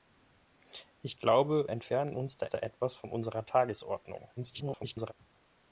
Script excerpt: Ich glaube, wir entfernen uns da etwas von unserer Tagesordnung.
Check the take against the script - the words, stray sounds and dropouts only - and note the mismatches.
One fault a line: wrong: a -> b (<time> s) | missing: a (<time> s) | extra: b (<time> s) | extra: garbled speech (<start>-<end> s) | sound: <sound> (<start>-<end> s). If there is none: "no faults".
missing: wir (1.7 s)
extra: da (2.5 s)
extra: garbled speech (4.4-5.1 s)